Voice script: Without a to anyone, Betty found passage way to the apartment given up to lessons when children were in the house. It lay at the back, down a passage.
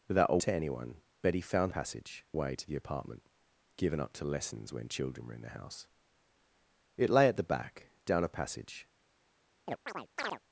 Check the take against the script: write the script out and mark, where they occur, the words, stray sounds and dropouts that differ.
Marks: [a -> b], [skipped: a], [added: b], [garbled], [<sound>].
Without a to anyone, Betty found passage way to the apartment given up to lessons when children were in the house. It lay at the back, down a passage. [chirp]